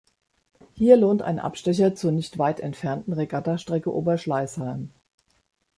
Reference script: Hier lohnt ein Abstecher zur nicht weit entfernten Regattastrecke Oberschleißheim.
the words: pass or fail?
pass